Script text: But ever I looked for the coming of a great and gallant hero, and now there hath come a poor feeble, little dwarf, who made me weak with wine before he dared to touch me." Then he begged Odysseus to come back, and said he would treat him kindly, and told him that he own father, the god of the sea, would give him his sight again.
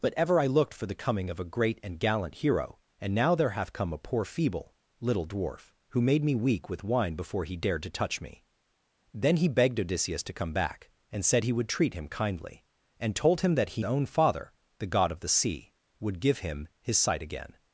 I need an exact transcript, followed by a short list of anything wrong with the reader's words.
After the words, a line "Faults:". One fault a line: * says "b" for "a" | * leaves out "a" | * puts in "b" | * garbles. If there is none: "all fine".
But ever I looked for the coming of a great and gallant hero, and now there hath come a poor feeble, little dwarf, who made me weak with wine before he dared to touch me." Then he begged Odysseus to come back, and said he would treat him kindly, and told him that he own father, the god of the sea, would give him his sight again.
Faults:
all fine